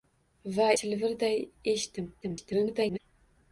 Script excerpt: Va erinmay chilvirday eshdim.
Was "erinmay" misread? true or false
true